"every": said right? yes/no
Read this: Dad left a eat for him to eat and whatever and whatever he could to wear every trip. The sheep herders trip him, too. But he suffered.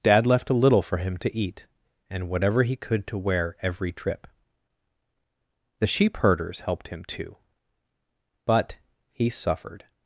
yes